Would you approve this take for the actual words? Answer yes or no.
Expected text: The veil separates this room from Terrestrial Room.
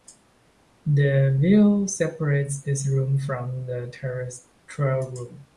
no